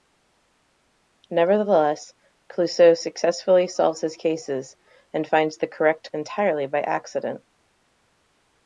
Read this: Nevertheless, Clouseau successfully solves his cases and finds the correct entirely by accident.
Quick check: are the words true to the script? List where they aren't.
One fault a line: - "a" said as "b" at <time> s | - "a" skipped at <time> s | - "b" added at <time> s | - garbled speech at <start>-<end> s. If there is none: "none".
none